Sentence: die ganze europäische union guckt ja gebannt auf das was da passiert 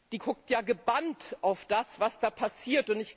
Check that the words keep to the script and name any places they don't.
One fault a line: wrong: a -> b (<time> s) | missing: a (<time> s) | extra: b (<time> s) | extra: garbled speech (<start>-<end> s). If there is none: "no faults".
missing: ganze europäische union (0.2 s)